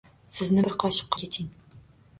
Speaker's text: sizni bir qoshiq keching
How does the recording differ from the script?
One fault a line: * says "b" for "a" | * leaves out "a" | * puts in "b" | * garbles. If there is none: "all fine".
all fine